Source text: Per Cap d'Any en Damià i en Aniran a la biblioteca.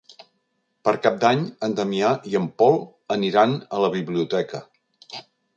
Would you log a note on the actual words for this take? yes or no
yes